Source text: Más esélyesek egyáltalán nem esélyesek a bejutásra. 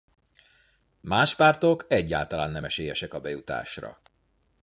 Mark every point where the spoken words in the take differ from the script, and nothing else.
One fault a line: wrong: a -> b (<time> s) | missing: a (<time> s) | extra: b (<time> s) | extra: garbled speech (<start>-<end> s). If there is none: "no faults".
wrong: esélyesek -> pártok (1.4 s)